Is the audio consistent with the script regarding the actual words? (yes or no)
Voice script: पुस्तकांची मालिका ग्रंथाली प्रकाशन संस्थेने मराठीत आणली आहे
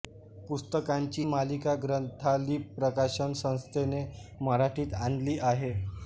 yes